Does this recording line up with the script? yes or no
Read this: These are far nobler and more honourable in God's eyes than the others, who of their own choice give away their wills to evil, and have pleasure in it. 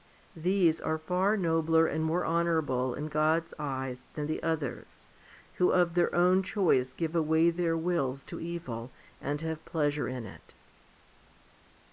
yes